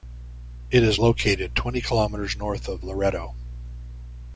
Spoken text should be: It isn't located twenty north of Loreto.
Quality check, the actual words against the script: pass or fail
fail